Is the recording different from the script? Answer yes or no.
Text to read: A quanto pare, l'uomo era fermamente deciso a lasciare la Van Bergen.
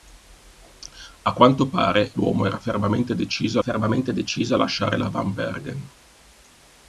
yes